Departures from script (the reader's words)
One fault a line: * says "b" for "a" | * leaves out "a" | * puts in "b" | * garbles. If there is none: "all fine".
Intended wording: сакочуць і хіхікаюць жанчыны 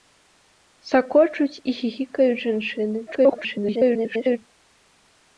* garbles